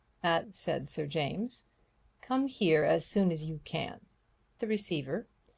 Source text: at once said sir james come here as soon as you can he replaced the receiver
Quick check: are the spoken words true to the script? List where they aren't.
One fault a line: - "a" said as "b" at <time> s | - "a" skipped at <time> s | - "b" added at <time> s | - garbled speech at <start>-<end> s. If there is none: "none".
- "once" skipped at 0.5 s
- "he replaced" skipped at 4.0 s